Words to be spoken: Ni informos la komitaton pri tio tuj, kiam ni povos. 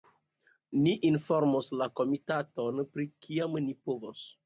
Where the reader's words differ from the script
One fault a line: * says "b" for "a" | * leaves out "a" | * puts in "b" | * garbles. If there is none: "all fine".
* leaves out "tio tuj"